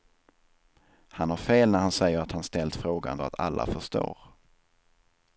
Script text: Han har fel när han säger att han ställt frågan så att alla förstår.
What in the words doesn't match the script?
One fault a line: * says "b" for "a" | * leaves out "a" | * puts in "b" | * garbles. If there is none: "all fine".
* leaves out "så"